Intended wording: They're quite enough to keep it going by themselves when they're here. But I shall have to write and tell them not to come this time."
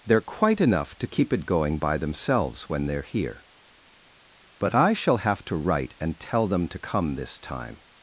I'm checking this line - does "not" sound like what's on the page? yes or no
no